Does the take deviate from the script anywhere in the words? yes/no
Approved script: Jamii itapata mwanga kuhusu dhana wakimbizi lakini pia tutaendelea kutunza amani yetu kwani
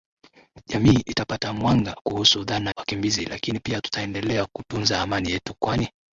no